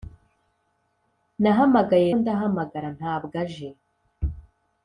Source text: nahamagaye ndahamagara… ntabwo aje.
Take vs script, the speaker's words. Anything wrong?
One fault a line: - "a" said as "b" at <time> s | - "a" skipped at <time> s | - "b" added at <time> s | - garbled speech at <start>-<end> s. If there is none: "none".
none